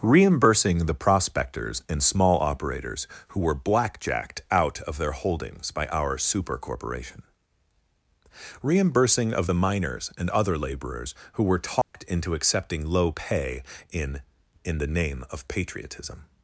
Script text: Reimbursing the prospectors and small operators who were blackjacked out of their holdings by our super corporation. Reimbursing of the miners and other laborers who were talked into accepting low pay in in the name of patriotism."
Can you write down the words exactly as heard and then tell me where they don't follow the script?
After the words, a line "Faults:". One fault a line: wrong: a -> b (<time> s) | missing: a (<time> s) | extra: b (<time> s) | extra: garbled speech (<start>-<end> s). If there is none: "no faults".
Reimbursing the prospectors and small operators who were blackjacked out of their holdings by our super corporation. Reimbursing of the miners and other laborers who were talked into accepting low pay in in the name of patriotism."
Faults:
no faults